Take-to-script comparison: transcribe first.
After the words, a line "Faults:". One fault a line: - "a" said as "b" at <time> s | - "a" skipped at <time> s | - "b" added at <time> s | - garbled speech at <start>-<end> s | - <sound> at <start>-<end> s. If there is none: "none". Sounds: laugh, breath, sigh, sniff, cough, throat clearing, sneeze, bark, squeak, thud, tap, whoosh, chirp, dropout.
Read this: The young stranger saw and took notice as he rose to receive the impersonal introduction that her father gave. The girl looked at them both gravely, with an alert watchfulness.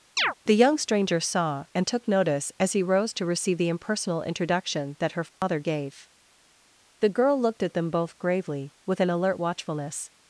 The young stranger saw and took notice as he rose to receive the impersonal introduction that her father gave. The girl looked at them both gravely, with an alert watchfulness.
Faults:
- chirp at 0.2-0.3 s
- dropout at 5.3-5.4 s